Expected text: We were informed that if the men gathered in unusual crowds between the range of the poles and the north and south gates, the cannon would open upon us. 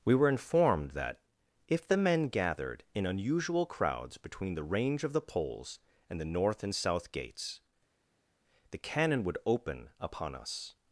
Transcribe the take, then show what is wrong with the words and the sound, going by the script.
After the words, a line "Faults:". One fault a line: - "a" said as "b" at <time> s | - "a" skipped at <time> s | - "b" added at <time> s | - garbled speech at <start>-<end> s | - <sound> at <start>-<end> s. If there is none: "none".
We were informed that if the men gathered in unusual crowds between the range of the poles and the north and south gates, the cannon would open upon us.
Faults:
none